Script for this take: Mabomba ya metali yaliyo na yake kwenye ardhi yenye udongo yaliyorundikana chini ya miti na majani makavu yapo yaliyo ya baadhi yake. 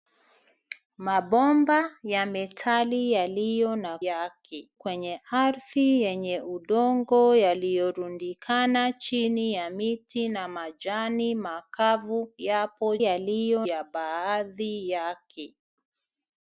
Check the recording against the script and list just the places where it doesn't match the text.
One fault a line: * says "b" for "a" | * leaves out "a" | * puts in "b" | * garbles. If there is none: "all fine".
all fine